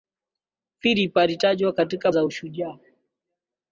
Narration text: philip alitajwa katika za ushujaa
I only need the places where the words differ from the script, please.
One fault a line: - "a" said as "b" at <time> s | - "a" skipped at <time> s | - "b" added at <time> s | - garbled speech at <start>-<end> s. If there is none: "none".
none